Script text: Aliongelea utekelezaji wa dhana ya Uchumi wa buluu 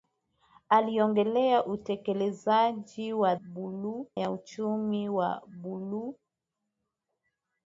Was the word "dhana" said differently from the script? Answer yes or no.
yes